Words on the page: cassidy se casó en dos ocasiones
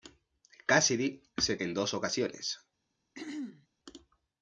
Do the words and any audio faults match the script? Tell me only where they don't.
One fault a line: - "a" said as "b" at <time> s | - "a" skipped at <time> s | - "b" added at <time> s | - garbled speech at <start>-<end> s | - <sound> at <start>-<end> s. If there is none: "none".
- "casó" skipped at 1.6 s
- throat clearing at 3.1-3.7 s